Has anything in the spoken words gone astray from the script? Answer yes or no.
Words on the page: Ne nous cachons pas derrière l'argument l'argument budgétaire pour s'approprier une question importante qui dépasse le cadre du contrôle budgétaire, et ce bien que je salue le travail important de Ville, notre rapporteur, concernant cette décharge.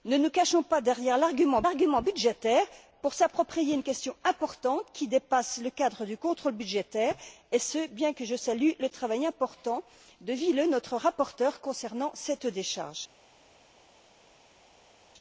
no